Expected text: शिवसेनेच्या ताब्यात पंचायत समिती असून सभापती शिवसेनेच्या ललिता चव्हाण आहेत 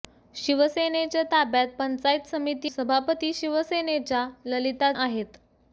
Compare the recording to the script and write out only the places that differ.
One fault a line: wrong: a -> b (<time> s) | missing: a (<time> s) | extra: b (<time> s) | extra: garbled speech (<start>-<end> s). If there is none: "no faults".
missing: असून (2.7 s)
missing: चव्हाण (4.9 s)